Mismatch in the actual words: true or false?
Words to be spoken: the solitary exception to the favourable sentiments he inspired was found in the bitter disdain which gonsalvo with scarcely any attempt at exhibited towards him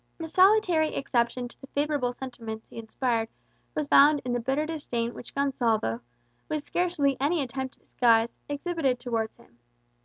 true